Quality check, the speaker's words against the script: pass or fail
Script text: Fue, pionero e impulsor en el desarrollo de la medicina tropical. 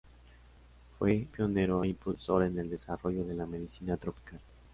pass